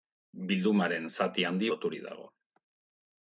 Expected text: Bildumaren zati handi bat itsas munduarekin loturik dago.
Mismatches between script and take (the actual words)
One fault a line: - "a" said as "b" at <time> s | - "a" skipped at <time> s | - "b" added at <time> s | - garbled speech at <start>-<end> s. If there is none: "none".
- "bat itsas munduarekin" skipped at 1.7 s